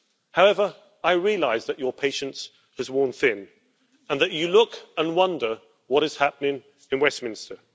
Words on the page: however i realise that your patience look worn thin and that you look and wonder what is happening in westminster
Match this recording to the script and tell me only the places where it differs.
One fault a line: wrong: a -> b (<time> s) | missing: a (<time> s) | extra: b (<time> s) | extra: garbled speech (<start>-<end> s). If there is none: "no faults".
wrong: look -> has (2.8 s)